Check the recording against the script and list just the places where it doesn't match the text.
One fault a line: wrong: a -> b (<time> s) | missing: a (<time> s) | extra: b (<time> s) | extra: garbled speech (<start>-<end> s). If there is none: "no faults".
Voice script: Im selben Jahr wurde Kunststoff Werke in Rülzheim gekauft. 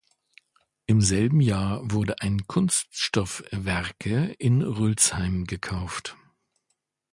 extra: ein (2.2 s)